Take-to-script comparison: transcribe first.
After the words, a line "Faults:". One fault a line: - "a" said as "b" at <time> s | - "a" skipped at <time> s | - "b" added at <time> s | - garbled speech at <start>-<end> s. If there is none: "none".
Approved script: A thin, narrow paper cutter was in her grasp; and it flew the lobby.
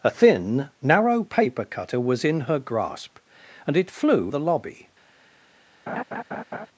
A thin, narrow paper cutter was in her grasp; and it flew the lobby.
Faults:
none